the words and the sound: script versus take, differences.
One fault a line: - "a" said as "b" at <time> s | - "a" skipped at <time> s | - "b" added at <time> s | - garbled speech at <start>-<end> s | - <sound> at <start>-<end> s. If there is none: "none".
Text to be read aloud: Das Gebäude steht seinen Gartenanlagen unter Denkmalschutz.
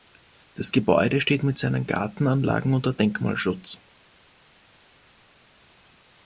- "mit" added at 1.4 s